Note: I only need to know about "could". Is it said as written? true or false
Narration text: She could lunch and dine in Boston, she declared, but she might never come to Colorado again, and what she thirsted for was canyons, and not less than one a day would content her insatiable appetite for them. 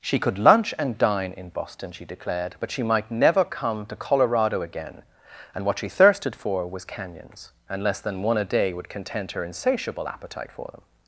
true